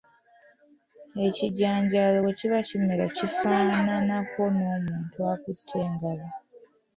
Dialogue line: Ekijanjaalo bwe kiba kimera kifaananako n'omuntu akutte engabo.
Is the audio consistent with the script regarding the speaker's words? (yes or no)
yes